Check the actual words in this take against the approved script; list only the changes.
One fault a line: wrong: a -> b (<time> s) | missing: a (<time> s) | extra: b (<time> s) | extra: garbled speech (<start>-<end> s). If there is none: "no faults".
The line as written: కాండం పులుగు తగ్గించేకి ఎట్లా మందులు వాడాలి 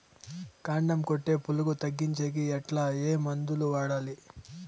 extra: కొట్టే (1.0 s)
extra: ఏ (3.0 s)